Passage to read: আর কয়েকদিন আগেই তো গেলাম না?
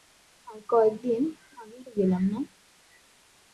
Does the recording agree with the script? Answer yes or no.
yes